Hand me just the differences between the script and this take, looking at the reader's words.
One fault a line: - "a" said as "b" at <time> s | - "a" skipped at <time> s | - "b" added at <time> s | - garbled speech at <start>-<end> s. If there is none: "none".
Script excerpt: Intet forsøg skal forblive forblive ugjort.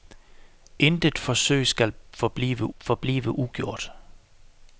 none